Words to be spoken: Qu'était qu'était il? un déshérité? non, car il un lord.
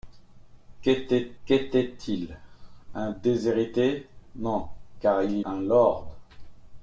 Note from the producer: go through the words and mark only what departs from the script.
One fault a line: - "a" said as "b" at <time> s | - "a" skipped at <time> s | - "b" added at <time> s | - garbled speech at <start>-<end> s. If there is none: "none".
none